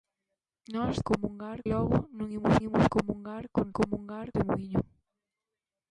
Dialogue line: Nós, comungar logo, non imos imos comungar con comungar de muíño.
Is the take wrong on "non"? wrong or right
right